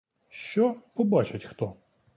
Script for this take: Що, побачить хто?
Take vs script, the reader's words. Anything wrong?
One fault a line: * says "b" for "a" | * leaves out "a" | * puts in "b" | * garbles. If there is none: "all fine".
all fine